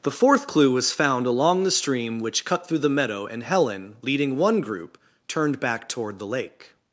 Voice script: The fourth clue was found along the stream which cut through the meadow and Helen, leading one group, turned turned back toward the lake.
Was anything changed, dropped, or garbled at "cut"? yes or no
no